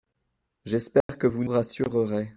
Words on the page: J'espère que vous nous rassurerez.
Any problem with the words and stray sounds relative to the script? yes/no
yes